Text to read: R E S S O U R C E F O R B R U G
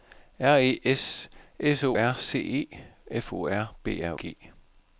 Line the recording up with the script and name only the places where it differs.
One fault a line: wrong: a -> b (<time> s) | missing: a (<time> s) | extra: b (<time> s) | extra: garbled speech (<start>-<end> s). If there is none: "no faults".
missing: U (1.9 s)
missing: U (4.2 s)